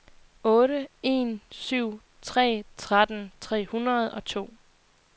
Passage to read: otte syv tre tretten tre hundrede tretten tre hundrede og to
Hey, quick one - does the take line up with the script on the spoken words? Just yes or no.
no